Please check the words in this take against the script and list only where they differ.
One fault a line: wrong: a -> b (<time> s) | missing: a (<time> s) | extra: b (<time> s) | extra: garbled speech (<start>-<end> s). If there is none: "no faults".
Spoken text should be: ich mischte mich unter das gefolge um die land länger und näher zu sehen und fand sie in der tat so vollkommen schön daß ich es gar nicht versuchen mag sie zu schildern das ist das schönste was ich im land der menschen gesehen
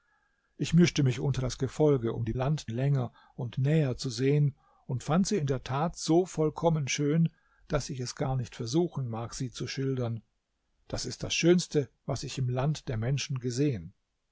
no faults